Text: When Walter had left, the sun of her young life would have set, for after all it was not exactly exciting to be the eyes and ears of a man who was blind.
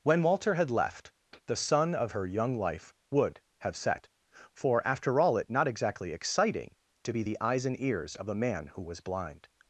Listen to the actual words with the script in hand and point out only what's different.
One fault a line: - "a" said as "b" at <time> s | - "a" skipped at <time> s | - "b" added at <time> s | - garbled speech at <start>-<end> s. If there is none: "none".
- "was" skipped at 5.5 s